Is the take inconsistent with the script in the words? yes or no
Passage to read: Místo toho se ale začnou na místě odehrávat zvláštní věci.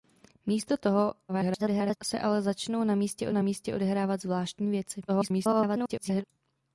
yes